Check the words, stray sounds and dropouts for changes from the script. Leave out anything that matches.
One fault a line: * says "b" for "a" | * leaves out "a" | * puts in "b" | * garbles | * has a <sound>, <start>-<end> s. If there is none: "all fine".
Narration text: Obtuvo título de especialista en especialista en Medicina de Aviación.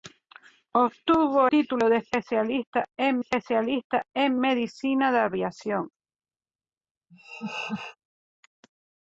* has a laugh, 7.1-8.0 s